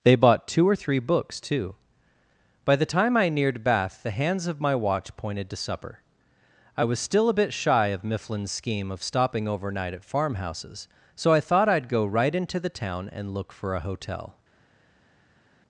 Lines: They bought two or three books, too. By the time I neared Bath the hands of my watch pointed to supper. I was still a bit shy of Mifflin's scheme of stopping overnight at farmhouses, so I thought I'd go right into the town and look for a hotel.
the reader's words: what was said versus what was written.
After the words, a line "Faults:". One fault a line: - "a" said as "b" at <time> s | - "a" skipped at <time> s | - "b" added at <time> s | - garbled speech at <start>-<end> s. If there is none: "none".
They bought two or three books, too. By the time I neared Bath the hands of my watch pointed to supper. I was still a bit shy of Mifflin's scheme of stopping overnight at farmhouses, so I thought I'd go right into the town and look for a hotel.
Faults:
none